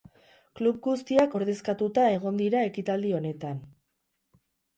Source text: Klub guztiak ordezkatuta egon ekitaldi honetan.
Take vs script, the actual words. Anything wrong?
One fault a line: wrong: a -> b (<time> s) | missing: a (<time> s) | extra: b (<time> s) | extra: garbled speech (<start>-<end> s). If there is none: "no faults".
extra: dira (2.4 s)